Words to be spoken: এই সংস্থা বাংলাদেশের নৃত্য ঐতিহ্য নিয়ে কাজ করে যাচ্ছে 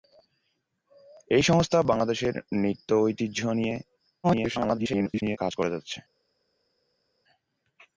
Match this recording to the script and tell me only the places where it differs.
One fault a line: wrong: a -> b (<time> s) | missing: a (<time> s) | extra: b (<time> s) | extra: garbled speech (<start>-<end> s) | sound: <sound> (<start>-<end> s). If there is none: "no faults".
extra: garbled speech (4.2-5.4 s)